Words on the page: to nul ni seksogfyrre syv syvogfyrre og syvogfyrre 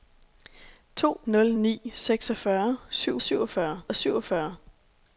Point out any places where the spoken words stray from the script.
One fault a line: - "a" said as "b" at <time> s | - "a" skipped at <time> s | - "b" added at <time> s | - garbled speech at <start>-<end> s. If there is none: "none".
none